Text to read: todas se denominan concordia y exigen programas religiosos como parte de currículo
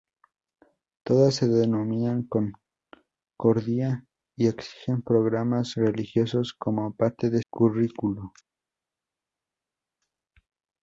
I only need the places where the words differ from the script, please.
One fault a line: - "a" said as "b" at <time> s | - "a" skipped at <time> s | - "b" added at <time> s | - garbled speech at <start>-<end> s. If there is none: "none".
none